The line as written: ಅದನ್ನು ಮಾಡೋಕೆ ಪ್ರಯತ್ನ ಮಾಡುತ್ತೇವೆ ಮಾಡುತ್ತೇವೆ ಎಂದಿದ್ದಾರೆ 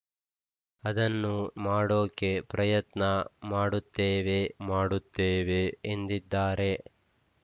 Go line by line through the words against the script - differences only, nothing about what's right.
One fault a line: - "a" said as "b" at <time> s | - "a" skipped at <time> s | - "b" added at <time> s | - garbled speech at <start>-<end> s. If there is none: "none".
none